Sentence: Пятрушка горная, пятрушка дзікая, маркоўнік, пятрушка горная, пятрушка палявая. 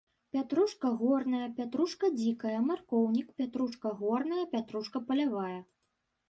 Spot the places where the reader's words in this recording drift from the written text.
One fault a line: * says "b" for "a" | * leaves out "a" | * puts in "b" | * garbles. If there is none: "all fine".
all fine